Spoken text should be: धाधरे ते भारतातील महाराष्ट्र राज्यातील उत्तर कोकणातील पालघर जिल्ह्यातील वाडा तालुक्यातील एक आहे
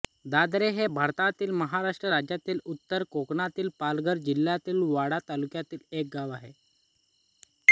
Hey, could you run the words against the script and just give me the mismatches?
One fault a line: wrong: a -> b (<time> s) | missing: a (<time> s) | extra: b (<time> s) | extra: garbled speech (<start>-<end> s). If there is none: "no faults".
wrong: ते -> हे (0.7 s)
extra: गाव (6.1 s)